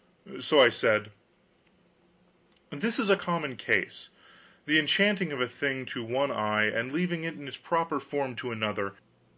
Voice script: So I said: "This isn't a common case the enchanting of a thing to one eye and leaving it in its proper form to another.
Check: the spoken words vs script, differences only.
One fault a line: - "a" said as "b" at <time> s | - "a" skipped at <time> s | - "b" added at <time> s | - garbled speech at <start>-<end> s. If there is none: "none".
- "isn't" said as "is" at 3.0 s